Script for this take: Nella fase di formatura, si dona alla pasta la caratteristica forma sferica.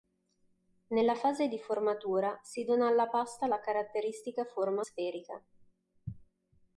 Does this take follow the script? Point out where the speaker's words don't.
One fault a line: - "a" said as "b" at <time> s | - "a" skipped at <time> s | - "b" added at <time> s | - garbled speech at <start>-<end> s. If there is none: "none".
none